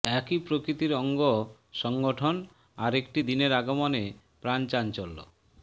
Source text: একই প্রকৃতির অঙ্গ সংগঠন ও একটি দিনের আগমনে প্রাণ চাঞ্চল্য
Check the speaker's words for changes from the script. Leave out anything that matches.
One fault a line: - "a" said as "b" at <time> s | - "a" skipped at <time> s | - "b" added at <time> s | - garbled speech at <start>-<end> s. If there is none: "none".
- "ও" said as "আর" at 2.8 s